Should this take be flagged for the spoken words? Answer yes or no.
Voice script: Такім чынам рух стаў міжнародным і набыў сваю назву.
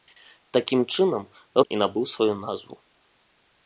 yes